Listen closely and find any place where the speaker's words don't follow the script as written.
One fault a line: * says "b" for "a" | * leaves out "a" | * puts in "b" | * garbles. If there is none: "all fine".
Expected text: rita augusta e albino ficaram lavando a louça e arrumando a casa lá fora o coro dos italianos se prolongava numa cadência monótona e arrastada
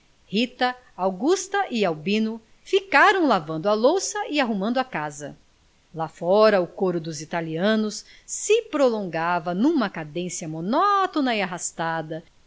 all fine